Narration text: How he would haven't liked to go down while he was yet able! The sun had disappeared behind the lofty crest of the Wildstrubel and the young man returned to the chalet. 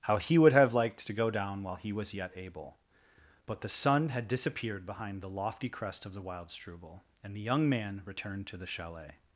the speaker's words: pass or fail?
fail